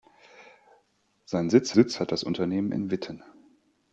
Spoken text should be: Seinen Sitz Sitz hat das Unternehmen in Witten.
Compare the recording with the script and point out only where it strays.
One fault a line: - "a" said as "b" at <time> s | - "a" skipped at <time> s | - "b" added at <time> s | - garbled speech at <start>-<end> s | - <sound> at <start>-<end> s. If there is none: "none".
none